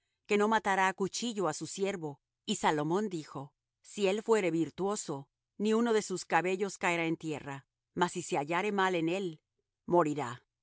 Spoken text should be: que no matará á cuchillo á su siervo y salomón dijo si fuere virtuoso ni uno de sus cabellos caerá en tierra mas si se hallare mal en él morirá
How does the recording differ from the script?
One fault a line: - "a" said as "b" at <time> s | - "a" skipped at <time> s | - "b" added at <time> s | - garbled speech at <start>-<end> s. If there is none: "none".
- "él" added at 4.1 s